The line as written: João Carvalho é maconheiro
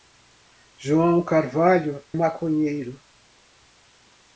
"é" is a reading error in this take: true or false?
true